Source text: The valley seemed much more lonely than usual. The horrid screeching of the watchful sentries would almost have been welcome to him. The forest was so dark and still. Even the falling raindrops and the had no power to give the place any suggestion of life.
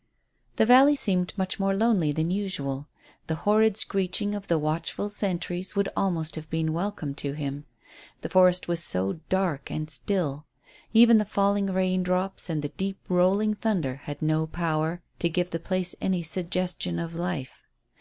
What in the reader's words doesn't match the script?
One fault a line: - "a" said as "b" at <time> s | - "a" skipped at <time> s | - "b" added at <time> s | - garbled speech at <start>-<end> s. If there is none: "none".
- "deep rolling thunder" added at 12.7 s